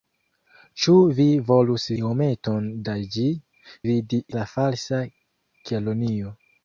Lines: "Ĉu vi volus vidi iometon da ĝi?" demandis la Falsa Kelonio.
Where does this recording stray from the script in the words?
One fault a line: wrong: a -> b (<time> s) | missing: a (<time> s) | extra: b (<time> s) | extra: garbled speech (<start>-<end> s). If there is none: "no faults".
missing: vidi (1.9 s)
wrong: demandis -> vidi (3.9 s)